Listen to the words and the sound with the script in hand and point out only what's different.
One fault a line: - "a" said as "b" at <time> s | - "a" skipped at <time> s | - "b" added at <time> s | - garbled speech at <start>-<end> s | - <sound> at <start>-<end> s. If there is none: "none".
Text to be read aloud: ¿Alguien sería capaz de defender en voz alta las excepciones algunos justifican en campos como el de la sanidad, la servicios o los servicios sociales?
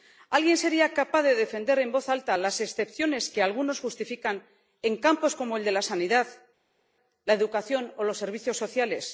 - "que" added at 3.3 s
- "servicios" said as "educación" at 7.3 s